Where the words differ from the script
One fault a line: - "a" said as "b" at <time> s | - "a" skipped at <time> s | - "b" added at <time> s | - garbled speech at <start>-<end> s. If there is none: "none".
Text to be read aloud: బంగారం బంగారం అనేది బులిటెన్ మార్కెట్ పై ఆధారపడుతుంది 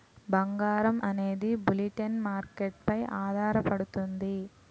- "బంగారం" skipped at 1.0 s